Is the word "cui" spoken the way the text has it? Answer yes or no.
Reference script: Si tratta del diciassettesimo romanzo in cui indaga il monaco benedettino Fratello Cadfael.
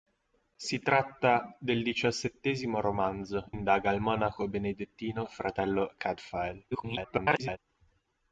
no